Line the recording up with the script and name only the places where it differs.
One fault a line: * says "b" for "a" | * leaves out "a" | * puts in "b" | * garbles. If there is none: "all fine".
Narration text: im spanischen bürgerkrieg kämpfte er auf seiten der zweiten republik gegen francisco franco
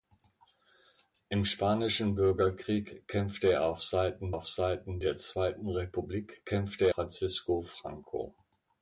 * puts in "auf seiten"
* says "kämpfte" for "gegen"